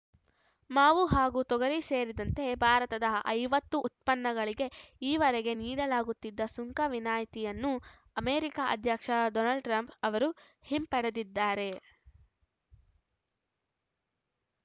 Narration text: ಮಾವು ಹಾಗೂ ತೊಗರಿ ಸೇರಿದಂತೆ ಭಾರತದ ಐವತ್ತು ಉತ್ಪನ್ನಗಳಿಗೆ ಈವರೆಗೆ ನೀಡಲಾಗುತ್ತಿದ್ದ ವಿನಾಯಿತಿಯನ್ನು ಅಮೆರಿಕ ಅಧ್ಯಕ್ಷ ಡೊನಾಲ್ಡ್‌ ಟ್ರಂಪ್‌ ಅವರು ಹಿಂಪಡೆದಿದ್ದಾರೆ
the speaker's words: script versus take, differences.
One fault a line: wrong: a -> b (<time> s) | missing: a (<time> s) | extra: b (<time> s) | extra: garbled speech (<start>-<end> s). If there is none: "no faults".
extra: ಸುಂಕ (6.6 s)